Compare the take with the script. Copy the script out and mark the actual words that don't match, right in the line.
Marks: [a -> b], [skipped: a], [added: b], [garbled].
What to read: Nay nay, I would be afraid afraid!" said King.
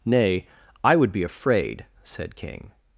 Nay [skipped: nay,] I would be afraid [skipped: afraid!"] said King.